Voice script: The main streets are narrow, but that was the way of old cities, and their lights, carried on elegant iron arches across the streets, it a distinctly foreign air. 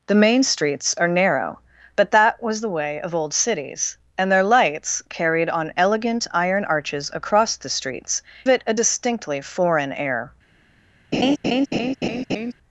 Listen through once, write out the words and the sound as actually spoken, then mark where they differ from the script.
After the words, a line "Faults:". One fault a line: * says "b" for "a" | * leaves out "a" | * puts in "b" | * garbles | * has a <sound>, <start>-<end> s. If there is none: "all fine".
The main streets are narrow, but that was the way of old cities, and their lights, carried on elegant iron arches across the streets, it a distinctly foreign air.
Faults:
* has a laugh, 11.1-12.5 s